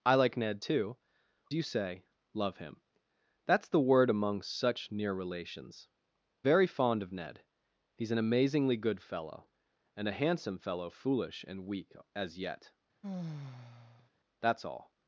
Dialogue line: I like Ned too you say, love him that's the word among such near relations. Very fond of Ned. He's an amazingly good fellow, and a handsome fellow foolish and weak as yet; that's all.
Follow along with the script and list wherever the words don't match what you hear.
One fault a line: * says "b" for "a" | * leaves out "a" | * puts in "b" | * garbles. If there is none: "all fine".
all fine